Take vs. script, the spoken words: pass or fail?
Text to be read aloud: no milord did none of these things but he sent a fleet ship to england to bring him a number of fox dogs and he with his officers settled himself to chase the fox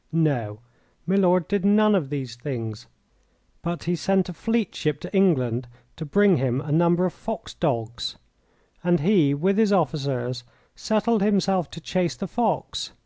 pass